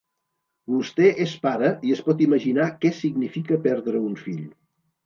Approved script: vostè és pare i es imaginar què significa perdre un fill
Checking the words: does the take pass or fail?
fail